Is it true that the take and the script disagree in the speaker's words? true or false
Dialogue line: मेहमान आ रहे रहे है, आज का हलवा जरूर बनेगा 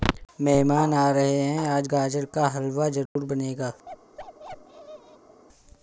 true